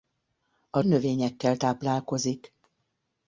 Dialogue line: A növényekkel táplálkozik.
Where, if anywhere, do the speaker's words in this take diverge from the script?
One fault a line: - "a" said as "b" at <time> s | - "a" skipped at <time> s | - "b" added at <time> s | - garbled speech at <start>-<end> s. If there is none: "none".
none